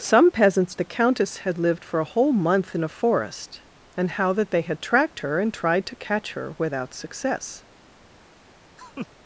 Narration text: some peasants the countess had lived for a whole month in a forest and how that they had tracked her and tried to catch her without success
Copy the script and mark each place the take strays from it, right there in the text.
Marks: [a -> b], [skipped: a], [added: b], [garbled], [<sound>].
some peasants the countess had lived for a whole month in a forest and how that they had tracked her and tried to catch her without success [laugh]